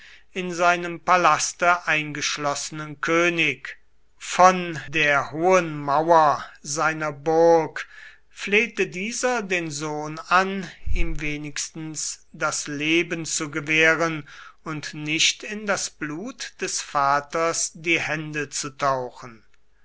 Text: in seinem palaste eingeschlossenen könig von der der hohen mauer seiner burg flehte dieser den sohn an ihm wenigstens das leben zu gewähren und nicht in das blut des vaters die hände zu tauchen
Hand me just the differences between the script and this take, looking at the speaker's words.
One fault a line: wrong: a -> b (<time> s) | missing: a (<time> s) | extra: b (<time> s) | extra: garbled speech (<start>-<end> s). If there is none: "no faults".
missing: der (5.3 s)